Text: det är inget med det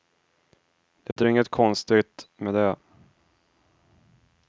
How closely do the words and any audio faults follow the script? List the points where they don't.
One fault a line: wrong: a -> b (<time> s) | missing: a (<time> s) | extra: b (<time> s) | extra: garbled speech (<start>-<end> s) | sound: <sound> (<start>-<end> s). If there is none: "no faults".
sound: dropout (1.1-1.2 s)
extra: konstigt (1.5 s)